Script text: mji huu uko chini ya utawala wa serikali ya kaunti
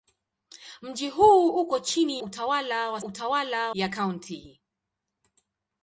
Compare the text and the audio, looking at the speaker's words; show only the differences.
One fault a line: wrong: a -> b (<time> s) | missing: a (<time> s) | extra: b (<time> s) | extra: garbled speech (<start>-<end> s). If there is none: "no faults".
missing: ya (2.2 s)
wrong: serikali -> utawala (3.0 s)